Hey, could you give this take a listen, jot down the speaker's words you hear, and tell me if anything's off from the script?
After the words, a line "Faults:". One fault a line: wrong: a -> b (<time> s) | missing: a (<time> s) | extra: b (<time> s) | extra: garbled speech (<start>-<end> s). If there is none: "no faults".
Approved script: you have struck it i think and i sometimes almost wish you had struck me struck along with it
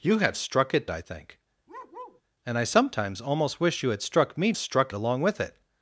you have struck it i think and i sometimes almost wish you had struck me struck along with it
Faults:
no faults